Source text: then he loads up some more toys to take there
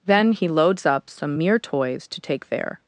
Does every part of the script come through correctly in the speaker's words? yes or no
no